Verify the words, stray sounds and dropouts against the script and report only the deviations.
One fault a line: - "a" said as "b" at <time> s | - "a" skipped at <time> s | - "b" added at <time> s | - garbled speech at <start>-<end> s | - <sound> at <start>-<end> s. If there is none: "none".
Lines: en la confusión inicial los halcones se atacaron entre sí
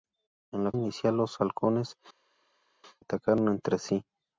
- "confusión" skipped at 0.7 s
- "se" skipped at 2.0 s